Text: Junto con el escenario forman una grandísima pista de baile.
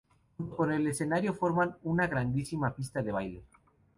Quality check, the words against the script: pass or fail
pass